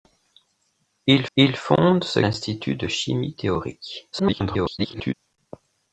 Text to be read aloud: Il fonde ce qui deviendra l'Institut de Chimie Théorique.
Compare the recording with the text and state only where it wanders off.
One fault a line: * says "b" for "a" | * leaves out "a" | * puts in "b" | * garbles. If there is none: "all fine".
* puts in "il"
* leaves out "qui deviendra"
* garbles